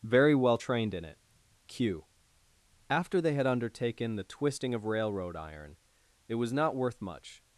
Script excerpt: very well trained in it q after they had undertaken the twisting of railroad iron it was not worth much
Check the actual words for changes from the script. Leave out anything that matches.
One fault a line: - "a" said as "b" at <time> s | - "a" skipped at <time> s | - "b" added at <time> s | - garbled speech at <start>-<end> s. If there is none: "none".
none